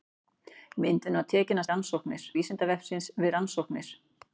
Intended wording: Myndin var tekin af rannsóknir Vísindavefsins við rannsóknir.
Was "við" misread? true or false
false